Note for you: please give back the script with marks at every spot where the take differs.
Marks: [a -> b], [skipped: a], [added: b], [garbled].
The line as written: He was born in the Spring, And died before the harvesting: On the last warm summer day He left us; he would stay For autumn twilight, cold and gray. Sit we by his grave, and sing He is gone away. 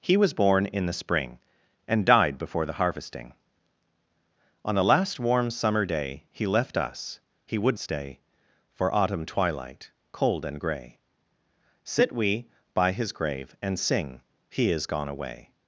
He was born in the Spring, And died before the harvesting: On the last warm summer day He left us; he would stay For autumn twilight, cold and gray. Sit we by his grave, and sing He is gone away.